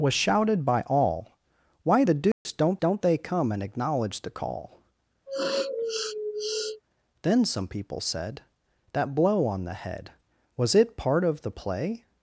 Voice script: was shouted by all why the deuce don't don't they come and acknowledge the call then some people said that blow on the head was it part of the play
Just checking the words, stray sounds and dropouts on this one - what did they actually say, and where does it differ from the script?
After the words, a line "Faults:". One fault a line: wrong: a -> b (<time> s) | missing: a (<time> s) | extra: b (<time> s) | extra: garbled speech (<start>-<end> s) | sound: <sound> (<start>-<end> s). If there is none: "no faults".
was shouted by all why the deuce don't don't they come and acknowledge the call then some people said that blow on the head was it part of the play
Faults:
sound: dropout (2.3-2.5 s)
sound: sniff (5.3-6.8 s)